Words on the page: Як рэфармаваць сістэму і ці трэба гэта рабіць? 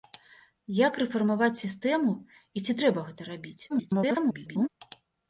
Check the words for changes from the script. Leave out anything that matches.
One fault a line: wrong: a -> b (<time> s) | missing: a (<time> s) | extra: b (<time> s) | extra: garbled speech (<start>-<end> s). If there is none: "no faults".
extra: garbled speech (3.7-4.7 s)